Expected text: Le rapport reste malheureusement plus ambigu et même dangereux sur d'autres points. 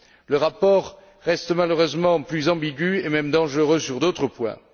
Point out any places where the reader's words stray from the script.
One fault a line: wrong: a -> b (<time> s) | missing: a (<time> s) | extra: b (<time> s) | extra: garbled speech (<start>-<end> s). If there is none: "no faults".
no faults